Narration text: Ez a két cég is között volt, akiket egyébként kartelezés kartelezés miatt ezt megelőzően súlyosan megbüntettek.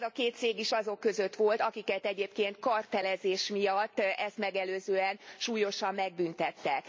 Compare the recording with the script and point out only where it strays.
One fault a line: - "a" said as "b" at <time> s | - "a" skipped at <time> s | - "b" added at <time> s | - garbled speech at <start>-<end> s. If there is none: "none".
- "azok" added at 0.7 s
- "kartelezés" skipped at 3.5 s